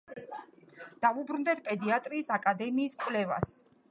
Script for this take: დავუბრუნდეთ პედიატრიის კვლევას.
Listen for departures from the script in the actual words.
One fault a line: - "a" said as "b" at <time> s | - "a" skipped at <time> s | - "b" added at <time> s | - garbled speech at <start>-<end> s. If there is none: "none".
- "აკადემიის" added at 2.4 s